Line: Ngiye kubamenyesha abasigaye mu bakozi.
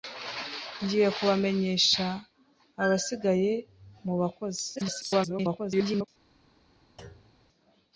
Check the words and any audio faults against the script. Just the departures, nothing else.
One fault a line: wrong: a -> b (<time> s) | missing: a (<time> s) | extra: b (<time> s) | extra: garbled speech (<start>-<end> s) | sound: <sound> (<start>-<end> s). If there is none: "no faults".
extra: garbled speech (4.8-6.1 s)
sound: thud (7.0-7.5 s)